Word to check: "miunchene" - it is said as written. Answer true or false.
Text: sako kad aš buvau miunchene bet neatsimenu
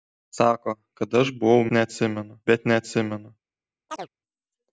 false